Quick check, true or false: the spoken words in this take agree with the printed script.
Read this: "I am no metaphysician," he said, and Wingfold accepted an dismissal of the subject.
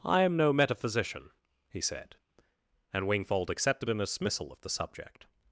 true